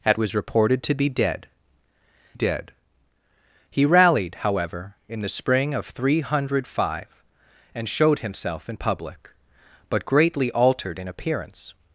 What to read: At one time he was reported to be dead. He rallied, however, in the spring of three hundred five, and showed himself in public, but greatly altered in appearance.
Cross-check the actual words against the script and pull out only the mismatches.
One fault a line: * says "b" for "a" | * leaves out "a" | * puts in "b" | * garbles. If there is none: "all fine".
* leaves out "one time he"
* puts in "dead"